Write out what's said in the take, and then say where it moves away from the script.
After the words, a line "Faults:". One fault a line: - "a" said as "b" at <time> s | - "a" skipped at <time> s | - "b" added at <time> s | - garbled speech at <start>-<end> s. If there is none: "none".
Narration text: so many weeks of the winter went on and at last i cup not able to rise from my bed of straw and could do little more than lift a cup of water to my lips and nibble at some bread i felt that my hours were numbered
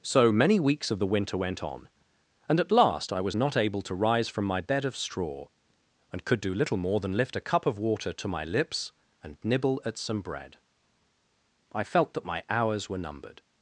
so many weeks of the winter went on and at last i was not able to rise from my bed of straw and could do little more than lift a cup of water to my lips and nibble at some bread i felt that my hours were numbered
Faults:
- "cup" said as "was" at 3.2 s